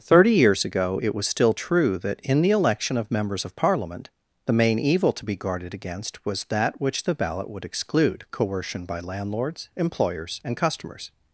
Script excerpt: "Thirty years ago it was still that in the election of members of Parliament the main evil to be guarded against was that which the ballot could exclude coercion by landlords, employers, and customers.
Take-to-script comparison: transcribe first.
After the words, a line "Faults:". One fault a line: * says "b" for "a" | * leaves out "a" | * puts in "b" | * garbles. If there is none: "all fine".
"Thirty years ago it was still true that in the election of members of Parliament the main evil to be guarded against was that which the ballot would exclude coercion by landlords, employers, and customers.
Faults:
* puts in "true"
* says "would" for "could"